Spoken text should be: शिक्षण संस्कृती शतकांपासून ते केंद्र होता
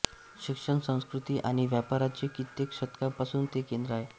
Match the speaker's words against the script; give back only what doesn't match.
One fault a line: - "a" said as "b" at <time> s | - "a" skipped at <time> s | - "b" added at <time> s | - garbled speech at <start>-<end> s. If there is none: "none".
- "आणि व्यापाराचे कित्येक" added at 1.4 s
- "होता" said as "आहे" at 3.9 s